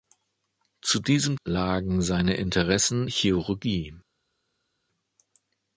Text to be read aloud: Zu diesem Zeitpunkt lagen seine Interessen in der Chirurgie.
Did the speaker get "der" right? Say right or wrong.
wrong